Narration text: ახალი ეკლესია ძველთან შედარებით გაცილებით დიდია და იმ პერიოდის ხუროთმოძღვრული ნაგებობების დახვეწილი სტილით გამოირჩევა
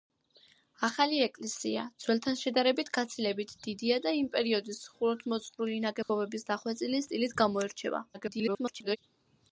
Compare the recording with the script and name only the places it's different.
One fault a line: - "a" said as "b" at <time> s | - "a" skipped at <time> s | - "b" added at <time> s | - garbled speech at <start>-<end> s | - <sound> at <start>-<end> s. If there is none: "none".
- dropout at 6.0-6.1 s
- garbled speech at 8.1-9.0 s